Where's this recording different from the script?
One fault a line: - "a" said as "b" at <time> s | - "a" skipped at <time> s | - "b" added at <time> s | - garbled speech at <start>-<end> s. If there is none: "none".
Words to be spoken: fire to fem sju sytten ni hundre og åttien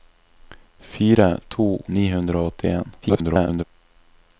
- "fem sju sytten" skipped at 1.8 s
- garbled speech at 3.0-3.6 s